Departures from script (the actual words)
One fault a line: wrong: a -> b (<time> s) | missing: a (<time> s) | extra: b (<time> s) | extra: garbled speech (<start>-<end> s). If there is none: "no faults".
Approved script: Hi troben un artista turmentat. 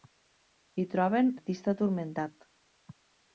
missing: un (1.3 s)